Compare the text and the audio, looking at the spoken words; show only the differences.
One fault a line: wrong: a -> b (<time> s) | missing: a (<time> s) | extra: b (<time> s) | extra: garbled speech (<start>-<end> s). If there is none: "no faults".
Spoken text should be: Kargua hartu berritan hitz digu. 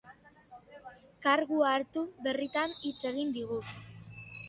extra: egin (3.1 s)